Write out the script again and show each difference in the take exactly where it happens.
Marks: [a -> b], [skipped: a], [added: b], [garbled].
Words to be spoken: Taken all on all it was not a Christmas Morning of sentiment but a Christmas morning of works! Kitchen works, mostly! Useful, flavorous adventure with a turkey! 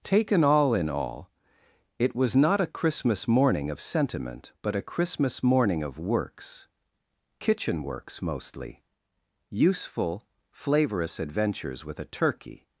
Taken all [on -> in] all it was not a Christmas Morning of sentiment but a Christmas morning of works! Kitchen works, mostly! Useful, flavorous [adventure -> adventures] with a turkey!